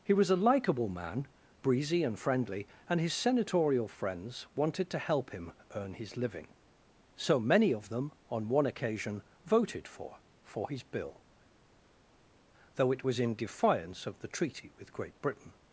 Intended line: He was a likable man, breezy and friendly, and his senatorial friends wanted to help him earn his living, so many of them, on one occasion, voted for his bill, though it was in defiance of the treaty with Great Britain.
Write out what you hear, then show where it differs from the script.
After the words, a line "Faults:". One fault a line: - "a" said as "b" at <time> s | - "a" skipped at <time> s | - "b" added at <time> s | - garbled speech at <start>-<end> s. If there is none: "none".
He was a likable man, breezy and friendly, and his senatorial friends wanted to help him earn his living, so many of them, on one occasion, voted for for his bill, though it was in defiance of the treaty with Great Britain.
Faults:
- "for" added at 10.4 s